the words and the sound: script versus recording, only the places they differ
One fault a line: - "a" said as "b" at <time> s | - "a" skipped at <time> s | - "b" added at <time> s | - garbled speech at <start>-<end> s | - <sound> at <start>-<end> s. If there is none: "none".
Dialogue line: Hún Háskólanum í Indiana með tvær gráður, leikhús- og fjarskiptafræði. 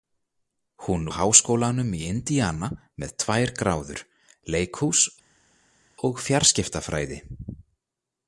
none